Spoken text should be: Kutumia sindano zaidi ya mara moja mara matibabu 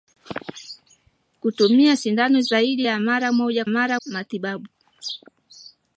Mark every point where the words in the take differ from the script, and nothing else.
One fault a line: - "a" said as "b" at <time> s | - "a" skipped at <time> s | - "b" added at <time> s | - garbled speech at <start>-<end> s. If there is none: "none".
none